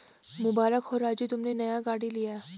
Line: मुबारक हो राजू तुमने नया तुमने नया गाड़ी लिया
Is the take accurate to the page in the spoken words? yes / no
no